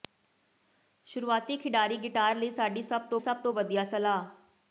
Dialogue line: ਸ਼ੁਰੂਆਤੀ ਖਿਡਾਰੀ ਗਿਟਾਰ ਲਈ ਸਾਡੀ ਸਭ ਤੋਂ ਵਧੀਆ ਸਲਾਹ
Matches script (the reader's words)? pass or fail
fail